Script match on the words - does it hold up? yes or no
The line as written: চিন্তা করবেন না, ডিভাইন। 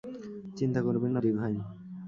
yes